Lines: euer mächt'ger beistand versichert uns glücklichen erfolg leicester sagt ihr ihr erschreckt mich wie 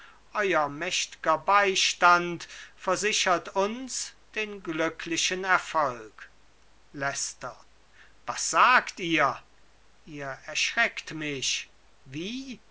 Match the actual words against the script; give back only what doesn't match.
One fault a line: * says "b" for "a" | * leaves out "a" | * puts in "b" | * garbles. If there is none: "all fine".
* puts in "den"
* puts in "was"